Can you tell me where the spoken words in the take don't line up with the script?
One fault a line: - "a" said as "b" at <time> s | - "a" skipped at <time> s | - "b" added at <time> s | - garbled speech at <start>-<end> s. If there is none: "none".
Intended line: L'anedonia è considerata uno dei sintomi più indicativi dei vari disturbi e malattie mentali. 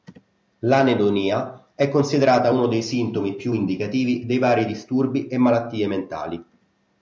none